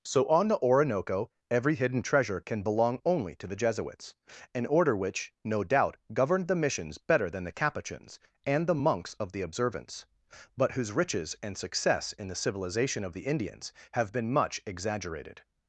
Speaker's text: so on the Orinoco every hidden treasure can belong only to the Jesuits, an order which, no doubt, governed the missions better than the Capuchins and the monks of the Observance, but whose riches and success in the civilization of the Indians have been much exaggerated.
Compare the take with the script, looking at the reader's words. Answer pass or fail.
pass